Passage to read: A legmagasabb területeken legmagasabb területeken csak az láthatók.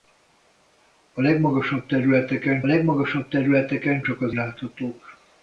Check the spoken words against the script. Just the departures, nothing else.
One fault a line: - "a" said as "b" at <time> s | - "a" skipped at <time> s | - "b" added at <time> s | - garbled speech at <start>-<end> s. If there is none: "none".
none